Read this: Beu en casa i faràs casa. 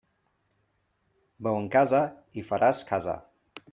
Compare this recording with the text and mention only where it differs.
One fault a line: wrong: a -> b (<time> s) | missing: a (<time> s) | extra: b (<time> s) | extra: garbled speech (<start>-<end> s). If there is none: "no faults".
no faults